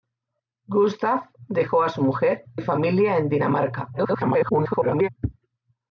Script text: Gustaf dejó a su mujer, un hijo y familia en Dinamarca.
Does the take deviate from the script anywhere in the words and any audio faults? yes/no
yes